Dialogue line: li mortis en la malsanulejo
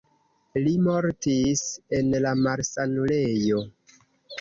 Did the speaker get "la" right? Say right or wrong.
right